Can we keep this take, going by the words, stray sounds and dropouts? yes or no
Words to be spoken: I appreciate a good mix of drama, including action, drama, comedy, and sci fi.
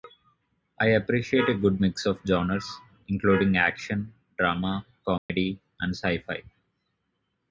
no